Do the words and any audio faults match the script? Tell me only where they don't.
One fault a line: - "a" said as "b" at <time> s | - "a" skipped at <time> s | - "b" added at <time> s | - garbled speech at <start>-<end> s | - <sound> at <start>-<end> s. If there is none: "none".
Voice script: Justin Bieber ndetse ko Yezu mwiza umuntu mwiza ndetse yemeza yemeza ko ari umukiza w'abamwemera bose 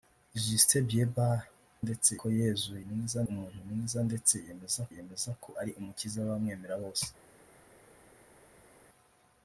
none